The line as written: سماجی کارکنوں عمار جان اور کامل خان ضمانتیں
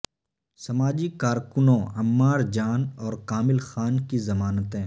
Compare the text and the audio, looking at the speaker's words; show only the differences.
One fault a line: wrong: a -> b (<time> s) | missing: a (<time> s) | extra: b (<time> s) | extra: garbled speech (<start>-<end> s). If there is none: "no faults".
extra: کی (4.1 s)